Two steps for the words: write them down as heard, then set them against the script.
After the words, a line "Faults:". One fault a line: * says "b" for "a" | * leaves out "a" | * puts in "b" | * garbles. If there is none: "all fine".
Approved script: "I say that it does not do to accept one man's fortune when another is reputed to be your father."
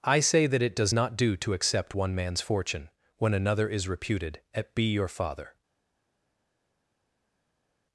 "I say that it does not do to accept one man's fortune when another is reputed at be your father."
Faults:
* says "at" for "to"